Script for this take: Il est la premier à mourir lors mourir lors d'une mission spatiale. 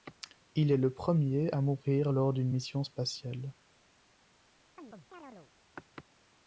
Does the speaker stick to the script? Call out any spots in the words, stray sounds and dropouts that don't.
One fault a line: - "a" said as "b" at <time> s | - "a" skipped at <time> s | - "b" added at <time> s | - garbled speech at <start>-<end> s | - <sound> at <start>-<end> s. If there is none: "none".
- "la" said as "le" at 0.8 s
- "mourir lors" skipped at 2.3 s
- chirp at 4.8-5.5 s